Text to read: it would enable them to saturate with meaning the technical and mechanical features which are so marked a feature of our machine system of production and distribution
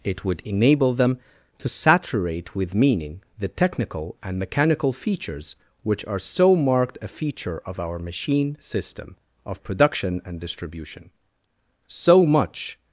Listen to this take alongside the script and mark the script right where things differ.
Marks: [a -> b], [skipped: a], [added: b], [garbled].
it would enable them to saturate with meaning the technical and mechanical features which are so marked a feature of our machine system of production and distribution [added: so much]